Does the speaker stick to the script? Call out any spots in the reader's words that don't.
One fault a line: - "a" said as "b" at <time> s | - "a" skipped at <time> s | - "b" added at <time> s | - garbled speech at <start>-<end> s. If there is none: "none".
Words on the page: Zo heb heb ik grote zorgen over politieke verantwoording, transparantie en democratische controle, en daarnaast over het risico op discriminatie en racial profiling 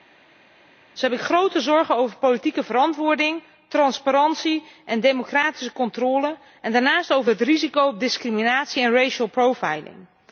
- "heb" skipped at 1.2 s